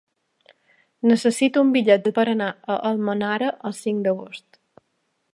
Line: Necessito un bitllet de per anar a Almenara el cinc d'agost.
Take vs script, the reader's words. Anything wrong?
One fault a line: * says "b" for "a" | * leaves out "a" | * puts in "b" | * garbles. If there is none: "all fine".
all fine